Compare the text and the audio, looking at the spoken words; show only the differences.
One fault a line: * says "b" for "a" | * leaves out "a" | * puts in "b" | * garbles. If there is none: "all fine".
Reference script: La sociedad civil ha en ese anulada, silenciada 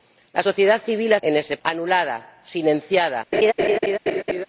all fine